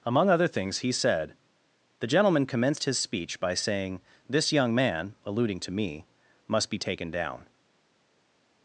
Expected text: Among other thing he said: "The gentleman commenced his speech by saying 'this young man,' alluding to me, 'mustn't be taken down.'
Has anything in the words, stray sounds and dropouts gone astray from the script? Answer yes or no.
yes